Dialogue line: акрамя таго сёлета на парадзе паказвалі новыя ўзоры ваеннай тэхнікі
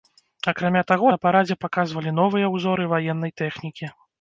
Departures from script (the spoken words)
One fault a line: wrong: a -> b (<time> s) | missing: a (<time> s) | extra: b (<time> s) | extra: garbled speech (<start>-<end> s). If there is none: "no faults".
missing: сёлета (1.1 s)